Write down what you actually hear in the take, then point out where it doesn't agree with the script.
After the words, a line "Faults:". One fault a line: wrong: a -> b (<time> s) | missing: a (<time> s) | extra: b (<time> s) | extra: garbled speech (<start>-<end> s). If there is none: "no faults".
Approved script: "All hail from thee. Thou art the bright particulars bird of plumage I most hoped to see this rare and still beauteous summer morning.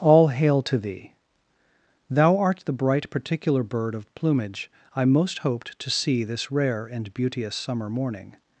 "All hail to thee. Thou art the bright particular bird of plumage I most hoped to see this rare and beauteous summer morning.
Faults:
wrong: from -> to (0.6 s)
wrong: particulars -> particular (3.1 s)
missing: still (7.1 s)